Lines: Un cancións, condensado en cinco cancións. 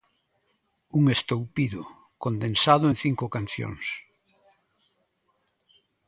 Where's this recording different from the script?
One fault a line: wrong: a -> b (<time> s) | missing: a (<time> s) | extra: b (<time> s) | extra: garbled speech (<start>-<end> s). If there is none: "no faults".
wrong: cancións -> estoupido (1.1 s)